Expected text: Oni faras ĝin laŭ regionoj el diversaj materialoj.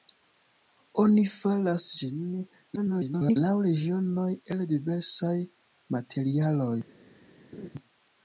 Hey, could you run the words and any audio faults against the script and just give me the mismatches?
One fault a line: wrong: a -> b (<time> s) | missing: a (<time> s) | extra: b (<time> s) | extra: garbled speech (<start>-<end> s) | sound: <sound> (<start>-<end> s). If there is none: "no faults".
extra: garbled speech (2.8-3.4 s)
sound: laugh (7.5-7.7 s)